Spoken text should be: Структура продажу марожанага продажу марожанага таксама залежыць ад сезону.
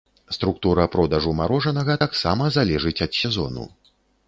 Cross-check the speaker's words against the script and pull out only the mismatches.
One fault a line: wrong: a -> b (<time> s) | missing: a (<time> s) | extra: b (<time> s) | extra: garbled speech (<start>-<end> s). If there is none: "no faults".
missing: продажу марожанага (2.0 s)